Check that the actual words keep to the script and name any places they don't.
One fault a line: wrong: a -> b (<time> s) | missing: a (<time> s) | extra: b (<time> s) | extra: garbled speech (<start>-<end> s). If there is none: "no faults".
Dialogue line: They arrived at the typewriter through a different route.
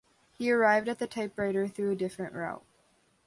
wrong: They -> He (0.3 s)